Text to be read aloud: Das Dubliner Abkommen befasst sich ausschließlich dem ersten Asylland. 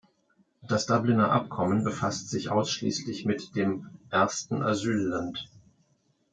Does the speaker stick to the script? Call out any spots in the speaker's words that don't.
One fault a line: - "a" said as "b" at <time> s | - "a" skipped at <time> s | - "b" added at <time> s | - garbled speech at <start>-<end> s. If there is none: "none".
- "mit" added at 3.2 s